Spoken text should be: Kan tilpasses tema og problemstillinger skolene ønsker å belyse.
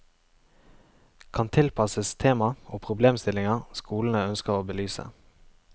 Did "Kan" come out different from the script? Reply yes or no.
no